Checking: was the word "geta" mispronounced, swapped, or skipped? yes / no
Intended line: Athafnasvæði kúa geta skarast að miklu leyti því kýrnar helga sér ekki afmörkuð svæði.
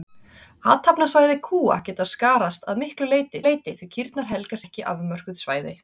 no